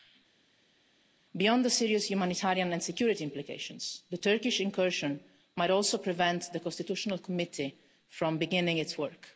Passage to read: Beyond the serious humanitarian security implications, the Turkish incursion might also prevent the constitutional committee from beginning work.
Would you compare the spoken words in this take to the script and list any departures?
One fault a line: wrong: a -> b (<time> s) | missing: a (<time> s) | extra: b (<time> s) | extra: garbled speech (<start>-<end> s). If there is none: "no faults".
extra: and (2.7 s)
extra: its (8.8 s)